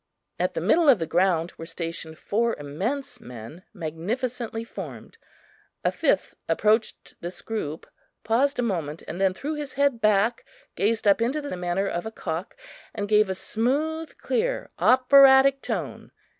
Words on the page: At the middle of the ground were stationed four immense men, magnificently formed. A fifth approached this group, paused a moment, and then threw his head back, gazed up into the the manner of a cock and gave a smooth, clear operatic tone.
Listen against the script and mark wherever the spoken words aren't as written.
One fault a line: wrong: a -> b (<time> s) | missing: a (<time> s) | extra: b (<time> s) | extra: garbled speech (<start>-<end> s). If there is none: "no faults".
no faults